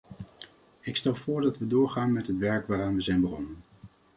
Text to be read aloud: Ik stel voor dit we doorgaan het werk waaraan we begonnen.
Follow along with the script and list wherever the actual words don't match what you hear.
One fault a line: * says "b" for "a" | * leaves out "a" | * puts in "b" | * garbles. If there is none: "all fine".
* says "dat" for "dit"
* puts in "met"
* puts in "zijn"